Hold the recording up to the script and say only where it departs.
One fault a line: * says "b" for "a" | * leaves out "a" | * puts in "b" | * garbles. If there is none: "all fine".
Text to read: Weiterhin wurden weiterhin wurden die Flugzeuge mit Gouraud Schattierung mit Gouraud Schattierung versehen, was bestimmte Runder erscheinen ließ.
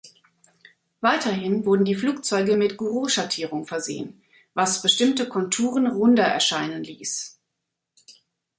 * leaves out "weiterhin wurden"
* leaves out "mit Gouraud Schattierung"
* puts in "Konturen"